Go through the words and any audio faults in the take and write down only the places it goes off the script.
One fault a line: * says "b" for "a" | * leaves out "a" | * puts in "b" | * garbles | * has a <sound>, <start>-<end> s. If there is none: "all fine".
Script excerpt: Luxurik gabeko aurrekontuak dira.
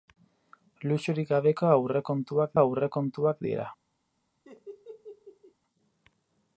* puts in "aurrekontuak"
* has a laugh, 4.4-5.5 s